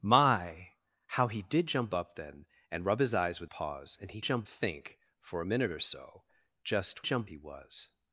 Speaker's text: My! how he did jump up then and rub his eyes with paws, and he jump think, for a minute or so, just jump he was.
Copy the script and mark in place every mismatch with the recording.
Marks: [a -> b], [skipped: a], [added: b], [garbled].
My! how he did jump up then and rub his eyes with paws, and he jump think, for a minute or so, just jump he was.